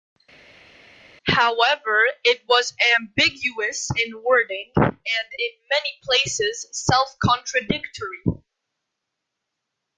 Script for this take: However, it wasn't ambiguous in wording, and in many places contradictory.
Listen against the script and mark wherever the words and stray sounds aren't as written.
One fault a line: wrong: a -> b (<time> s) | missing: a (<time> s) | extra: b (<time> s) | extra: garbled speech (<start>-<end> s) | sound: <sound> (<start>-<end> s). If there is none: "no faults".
wrong: wasn't -> was (2.5 s)
extra: self (6.7 s)